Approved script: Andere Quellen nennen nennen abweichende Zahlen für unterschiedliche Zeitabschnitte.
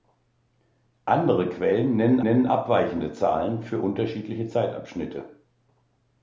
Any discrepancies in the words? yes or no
no